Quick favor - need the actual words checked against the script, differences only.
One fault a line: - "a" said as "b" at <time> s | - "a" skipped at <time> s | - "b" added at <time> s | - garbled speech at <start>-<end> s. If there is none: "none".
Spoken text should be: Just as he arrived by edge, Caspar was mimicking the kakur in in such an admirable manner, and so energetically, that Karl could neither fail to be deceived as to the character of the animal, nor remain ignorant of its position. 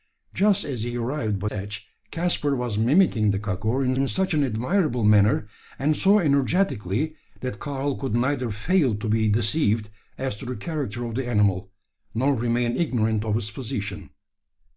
none